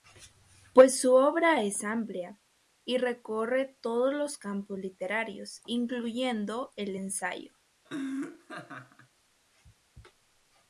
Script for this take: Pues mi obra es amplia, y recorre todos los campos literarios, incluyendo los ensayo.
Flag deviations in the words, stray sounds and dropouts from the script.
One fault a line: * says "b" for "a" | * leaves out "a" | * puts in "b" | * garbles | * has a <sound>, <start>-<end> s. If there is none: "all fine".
* says "su" for "mi"
* says "el" for "los"
* has a laugh, 7.8-9.1 s